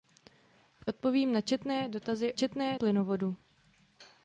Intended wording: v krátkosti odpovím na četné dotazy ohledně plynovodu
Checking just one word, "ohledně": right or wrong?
wrong